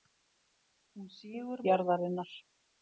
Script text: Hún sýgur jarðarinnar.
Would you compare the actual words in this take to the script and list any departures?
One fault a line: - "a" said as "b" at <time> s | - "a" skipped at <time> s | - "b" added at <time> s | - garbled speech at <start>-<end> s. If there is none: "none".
none